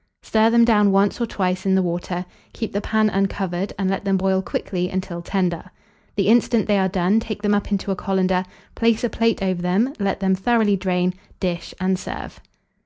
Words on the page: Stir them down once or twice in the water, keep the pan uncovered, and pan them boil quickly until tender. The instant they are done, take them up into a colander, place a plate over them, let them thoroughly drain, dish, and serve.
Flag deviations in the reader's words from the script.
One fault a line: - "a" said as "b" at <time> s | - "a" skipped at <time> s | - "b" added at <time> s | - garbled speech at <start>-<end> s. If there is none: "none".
- "pan" said as "let" at 3.9 s